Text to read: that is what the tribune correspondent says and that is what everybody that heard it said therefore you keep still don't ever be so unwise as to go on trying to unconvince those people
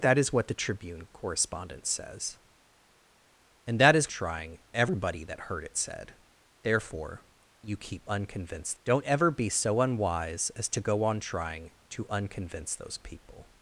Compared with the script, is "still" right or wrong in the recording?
wrong